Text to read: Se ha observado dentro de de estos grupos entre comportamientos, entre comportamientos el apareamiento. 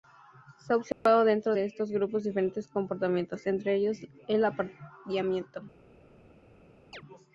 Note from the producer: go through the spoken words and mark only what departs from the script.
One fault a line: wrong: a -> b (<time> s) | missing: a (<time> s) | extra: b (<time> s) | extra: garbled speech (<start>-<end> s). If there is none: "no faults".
missing: de (1.6 s)
wrong: entre -> diferentes (2.2 s)
wrong: comportamientos -> ellos (3.7 s)